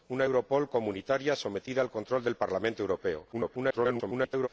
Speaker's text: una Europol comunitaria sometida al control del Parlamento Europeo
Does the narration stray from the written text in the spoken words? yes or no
yes